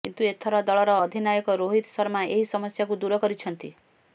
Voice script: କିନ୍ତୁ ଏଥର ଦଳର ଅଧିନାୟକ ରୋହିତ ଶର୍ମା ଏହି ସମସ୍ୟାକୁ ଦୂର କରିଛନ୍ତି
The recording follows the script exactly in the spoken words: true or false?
true